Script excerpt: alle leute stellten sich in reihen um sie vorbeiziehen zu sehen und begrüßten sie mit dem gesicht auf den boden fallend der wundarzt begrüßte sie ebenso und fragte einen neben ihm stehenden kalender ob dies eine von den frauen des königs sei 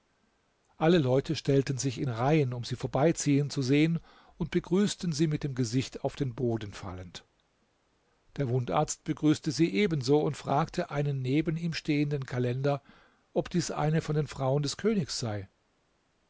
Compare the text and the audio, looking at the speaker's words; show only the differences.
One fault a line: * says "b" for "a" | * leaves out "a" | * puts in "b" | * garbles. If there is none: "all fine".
all fine